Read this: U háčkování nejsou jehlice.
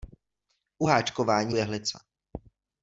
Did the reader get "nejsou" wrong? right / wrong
wrong